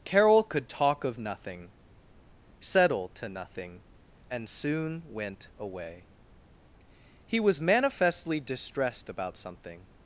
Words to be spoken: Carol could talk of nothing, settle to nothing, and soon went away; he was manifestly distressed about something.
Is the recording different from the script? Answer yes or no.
no